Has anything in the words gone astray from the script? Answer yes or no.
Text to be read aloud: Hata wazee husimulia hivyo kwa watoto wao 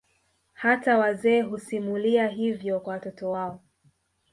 no